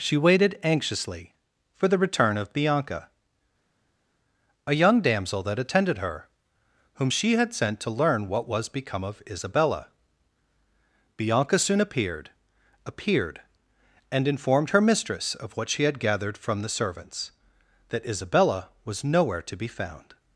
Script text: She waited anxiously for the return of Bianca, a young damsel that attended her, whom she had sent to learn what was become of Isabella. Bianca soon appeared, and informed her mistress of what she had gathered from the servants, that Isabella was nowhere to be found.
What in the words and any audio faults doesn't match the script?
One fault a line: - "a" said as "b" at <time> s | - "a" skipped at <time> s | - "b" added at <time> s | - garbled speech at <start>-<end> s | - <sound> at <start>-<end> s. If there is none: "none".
- "appeared" added at 12.9 s